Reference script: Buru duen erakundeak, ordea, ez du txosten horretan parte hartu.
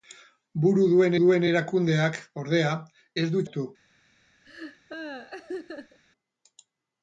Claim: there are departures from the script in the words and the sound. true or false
true